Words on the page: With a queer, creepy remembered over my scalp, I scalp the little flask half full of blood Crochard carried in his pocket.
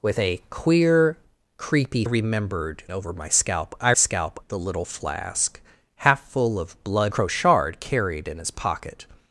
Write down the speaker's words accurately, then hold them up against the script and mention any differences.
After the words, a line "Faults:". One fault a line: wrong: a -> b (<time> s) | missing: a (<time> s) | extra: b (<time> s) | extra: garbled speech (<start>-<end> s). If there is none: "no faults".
With a queer, creepy remembered over my scalp, I scalp the little flask half full of blood Crochard carried in his pocket.
Faults:
no faults